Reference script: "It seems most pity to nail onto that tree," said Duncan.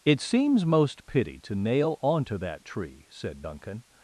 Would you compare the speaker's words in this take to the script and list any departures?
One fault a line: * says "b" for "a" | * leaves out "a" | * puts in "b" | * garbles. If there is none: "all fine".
all fine